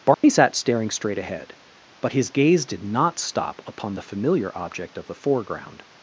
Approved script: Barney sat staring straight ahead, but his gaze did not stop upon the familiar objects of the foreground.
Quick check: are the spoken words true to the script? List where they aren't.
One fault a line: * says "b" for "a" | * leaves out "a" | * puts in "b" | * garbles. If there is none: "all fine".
* says "object" for "objects"